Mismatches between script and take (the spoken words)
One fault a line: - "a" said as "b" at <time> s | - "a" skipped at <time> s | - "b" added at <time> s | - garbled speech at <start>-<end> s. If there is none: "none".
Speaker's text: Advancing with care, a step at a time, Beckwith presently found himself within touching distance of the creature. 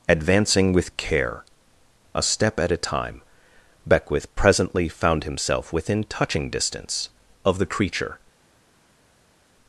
none